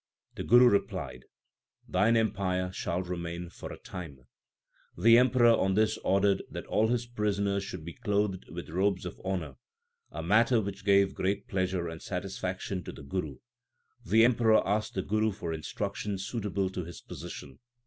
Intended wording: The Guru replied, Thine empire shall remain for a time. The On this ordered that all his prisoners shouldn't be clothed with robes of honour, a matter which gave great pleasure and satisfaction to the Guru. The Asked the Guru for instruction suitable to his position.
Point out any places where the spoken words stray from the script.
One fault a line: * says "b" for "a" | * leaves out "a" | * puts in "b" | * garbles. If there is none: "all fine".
* puts in "Emperor"
* says "should" for "shouldn't"
* puts in "Emperor"